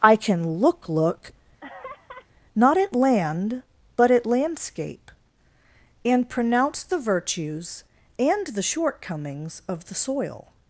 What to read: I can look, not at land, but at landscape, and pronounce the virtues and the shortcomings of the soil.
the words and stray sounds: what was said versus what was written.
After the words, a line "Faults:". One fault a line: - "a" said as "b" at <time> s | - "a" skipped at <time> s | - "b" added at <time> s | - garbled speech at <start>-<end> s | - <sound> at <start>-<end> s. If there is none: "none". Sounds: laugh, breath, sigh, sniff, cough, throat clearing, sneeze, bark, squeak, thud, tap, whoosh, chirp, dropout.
I can look look, not at land, but at landscape, and pronounce the virtues and the shortcomings of the soil.
Faults:
- "look" added at 0.9 s
- laugh at 1.6-2.3 s